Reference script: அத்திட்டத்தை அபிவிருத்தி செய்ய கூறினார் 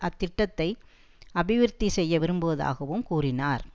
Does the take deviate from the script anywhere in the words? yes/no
yes